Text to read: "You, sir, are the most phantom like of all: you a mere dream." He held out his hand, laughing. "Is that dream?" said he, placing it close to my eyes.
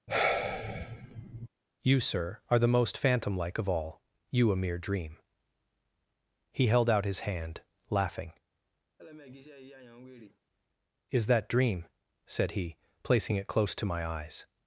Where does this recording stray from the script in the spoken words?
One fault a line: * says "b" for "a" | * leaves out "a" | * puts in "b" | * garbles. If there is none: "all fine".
all fine